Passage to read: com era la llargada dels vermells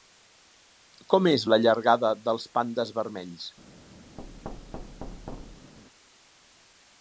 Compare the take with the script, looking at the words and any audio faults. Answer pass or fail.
fail